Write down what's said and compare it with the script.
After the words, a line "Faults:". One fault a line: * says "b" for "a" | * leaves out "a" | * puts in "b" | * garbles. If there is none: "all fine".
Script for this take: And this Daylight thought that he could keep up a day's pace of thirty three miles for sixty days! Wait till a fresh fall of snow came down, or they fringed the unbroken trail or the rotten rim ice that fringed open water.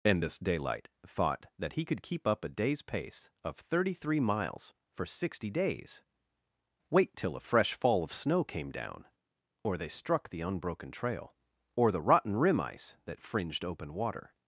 And this Daylight thought that he could keep up a day's pace of thirty three miles for sixty days! Wait till a fresh fall of snow came down, or they struck the unbroken trail or the rotten rim ice that fringed open water.
Faults:
* says "struck" for "fringed"